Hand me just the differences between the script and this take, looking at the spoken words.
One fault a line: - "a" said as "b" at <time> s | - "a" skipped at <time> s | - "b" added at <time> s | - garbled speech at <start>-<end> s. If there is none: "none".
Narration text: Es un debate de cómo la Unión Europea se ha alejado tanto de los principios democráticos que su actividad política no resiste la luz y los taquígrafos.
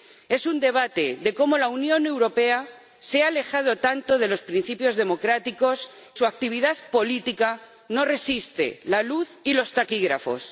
- "que" skipped at 5.9 s